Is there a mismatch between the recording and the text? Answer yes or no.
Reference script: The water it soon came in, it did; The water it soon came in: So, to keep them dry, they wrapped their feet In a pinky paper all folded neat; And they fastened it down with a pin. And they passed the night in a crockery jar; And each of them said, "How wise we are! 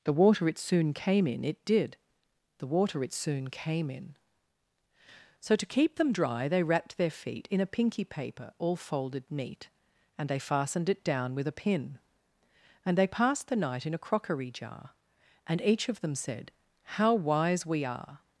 no